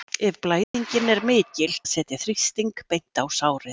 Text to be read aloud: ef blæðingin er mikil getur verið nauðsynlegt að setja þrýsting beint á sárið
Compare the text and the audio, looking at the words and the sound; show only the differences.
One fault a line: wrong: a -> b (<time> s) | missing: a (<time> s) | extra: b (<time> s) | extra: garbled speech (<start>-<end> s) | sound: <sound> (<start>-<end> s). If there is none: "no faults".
sound: dropout (0.6-0.7 s)
missing: getur verið nauðsynlegt (1.8 s)